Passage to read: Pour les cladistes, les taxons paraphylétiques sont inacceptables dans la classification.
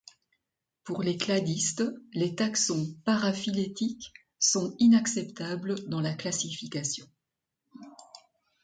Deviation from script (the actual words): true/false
false